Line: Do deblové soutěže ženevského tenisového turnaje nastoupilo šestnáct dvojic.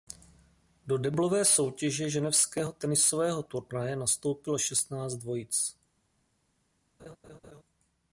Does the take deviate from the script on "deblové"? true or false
false